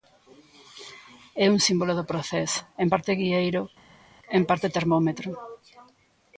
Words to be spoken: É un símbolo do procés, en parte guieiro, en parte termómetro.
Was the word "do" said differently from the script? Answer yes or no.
no